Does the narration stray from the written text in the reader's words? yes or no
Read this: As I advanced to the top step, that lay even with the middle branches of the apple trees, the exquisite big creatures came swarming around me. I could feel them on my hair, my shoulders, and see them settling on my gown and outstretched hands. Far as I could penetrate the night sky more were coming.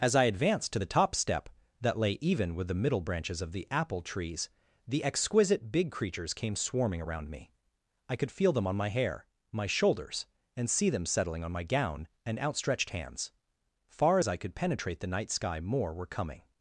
no